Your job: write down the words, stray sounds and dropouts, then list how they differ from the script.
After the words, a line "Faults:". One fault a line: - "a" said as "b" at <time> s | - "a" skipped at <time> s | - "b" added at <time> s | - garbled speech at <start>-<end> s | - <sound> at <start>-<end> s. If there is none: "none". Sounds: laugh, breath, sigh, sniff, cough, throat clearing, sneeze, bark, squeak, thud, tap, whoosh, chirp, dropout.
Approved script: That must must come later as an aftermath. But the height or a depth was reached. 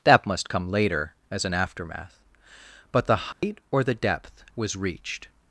That must come later as an aftermath. But the height or the depth was reached.
Faults:
- "must" skipped at 0.5 s
- dropout at 3.3-3.4 s
- "a" said as "the" at 3.8 s